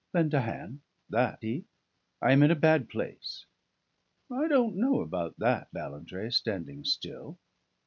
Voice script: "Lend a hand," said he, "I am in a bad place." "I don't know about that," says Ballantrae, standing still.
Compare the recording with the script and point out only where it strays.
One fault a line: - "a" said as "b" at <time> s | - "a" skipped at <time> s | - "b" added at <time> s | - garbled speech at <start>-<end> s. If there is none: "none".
- "said" said as "that" at 1.1 s
- "says" skipped at 5.7 s